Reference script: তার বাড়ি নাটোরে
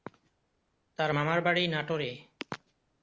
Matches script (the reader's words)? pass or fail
fail